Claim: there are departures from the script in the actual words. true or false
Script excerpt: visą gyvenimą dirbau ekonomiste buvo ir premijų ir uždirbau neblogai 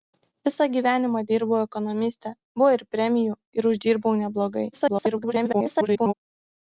true